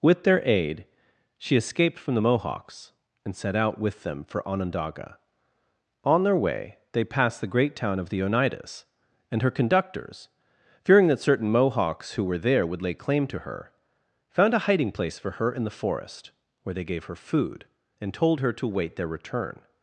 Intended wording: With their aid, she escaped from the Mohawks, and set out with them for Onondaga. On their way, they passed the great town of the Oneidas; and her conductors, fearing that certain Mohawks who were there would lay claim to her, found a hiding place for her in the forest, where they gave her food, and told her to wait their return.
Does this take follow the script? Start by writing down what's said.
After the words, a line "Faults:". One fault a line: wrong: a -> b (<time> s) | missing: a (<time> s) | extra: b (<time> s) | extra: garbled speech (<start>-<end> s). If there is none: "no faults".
With their aid, she escaped from the Mohawks, and set out with them for Onondaga. On their way, they passed the great town of the Oneidas; and her conductors, fearing that certain Mohawks who were there would lay claim to her, found a hiding place for her in the forest, where they gave her food, and told her to wait their return.
Faults:
no faults